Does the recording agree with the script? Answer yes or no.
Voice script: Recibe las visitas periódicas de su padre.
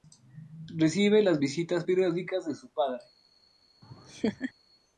yes